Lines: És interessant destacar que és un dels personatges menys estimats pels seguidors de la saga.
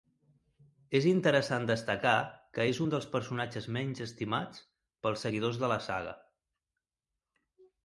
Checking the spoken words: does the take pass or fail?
pass